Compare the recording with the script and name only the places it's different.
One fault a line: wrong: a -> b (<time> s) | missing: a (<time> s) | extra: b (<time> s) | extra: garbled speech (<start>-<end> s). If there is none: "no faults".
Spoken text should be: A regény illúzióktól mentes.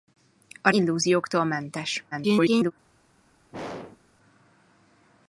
missing: regény (0.7 s)
extra: garbled speech (2.1-2.7 s)